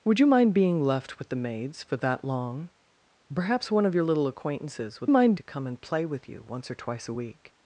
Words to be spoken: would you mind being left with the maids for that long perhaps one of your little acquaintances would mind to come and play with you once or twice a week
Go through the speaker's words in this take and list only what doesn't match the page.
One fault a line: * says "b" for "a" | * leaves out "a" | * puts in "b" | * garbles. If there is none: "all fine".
all fine